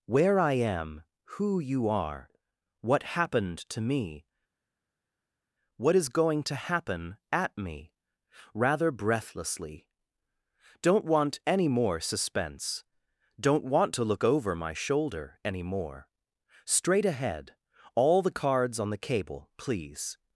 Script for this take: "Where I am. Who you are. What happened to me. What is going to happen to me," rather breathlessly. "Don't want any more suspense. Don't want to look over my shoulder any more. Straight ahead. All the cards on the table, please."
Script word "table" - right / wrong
wrong